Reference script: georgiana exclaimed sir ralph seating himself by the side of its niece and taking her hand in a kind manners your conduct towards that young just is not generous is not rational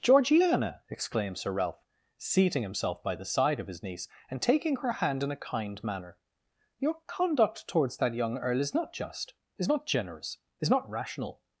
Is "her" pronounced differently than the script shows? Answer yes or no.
no